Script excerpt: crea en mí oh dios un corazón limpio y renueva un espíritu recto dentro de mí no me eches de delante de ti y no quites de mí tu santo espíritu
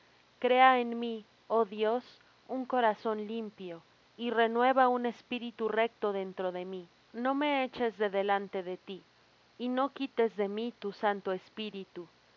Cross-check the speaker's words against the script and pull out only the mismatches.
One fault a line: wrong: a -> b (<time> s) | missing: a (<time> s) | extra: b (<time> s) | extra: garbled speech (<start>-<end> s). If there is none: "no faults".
no faults